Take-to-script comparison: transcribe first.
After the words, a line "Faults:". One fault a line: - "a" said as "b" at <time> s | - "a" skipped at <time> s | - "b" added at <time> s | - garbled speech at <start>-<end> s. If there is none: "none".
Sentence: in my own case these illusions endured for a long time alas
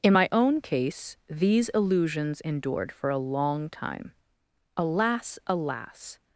in my own case these illusions endured for a long time alas alas
Faults:
- "alas" added at 5.5 s